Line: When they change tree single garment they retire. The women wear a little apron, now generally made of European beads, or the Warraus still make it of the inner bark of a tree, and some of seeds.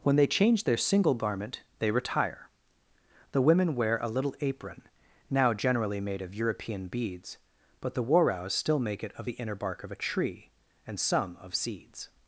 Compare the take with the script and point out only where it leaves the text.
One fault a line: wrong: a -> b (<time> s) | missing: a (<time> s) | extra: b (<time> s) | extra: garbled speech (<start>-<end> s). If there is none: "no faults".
wrong: tree -> their (0.6 s)
wrong: or -> but (7.8 s)